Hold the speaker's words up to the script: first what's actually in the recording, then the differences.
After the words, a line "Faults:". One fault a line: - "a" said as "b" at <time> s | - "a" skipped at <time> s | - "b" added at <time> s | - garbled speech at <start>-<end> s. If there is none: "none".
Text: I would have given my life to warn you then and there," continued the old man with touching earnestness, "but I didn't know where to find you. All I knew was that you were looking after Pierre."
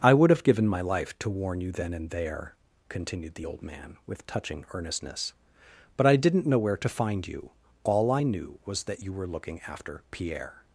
I would have given my life to warn you then and there," continued the old man with touching earnestness, "but I didn't know where to find you. All I knew was that you were looking after Pierre."
Faults:
none